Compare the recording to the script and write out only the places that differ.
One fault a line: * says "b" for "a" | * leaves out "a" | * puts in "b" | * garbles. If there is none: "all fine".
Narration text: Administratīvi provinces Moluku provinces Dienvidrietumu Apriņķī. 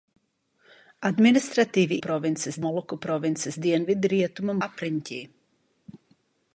all fine